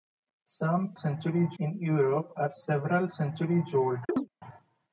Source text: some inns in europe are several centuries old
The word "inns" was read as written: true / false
false